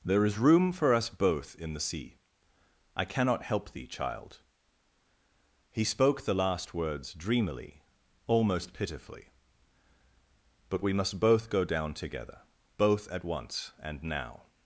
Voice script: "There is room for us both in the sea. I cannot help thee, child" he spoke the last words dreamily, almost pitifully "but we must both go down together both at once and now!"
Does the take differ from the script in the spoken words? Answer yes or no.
no